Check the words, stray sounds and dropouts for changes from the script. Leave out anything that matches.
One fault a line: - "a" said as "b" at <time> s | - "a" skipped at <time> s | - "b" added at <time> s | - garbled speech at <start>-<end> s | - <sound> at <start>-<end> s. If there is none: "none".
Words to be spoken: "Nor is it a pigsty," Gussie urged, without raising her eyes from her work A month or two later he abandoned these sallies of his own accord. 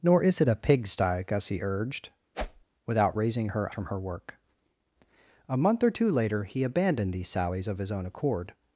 - whoosh at 2.3-2.7 s
- "eyes" skipped at 3.7 s